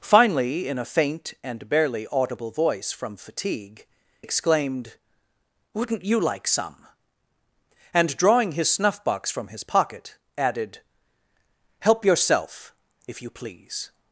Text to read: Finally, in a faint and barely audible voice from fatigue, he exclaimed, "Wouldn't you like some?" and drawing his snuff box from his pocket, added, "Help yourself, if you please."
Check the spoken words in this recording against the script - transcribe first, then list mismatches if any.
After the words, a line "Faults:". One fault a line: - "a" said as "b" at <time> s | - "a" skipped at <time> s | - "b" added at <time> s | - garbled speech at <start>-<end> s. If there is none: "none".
Finally, in a faint and barely audible voice from fatigue, exclaimed, "Wouldn't you like some?" and drawing his snuff box from his pocket, added, "Help yourself, if you please."
Faults:
- "he" skipped at 3.9 s